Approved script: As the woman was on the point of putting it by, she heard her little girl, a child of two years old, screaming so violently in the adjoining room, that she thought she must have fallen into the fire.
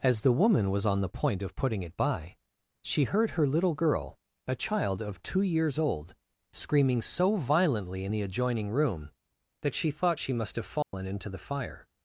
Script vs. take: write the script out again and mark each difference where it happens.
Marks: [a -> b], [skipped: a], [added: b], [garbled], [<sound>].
As the woman was on the point of putting it by, she heard her little girl, a child of two years old, screaming so violently in the adjoining room, that she thought she must have fallen [dropout] into the fire.